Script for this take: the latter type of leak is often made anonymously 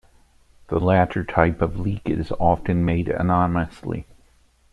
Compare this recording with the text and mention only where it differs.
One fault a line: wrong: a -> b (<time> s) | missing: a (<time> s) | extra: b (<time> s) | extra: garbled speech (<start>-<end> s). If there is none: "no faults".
no faults